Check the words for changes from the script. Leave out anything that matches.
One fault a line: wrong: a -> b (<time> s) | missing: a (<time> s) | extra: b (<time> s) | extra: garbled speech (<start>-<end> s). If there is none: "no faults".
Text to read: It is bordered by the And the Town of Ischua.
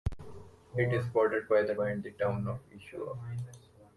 no faults